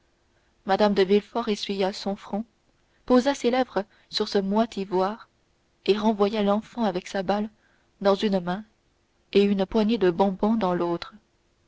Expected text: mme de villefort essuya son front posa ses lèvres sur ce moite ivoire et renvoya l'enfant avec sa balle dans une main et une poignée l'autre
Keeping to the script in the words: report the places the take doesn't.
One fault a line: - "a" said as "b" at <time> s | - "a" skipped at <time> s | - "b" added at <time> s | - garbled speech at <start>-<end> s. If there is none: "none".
- "de bonbons dans" added at 10.0 s